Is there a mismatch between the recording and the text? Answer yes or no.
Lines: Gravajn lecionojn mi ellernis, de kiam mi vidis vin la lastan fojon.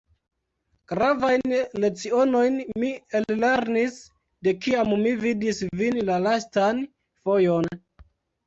no